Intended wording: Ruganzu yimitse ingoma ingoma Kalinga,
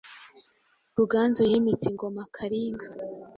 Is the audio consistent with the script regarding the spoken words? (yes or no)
no